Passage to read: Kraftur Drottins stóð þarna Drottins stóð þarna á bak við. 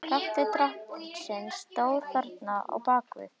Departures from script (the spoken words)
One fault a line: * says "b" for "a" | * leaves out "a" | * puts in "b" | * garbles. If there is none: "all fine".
* leaves out "Drottins stóð þarna"